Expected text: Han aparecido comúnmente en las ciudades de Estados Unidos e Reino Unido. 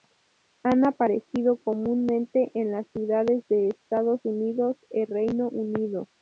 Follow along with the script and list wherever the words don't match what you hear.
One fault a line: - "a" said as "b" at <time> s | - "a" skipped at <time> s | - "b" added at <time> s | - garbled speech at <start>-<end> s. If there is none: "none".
none